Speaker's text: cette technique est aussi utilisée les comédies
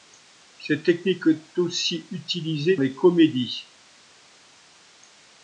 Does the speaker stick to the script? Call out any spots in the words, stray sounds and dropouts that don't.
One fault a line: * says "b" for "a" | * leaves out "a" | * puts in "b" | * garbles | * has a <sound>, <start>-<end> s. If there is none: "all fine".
all fine